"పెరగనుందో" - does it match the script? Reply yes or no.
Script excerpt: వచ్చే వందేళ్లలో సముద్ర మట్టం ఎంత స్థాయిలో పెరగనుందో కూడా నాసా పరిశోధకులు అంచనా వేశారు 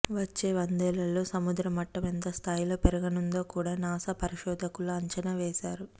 yes